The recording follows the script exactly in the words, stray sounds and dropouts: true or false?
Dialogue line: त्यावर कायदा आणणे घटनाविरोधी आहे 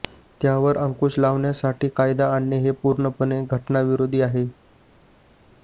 false